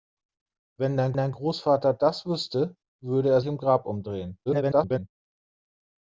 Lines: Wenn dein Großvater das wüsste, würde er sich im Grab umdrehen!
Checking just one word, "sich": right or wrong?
wrong